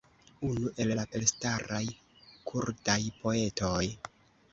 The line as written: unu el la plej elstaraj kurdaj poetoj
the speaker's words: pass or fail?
fail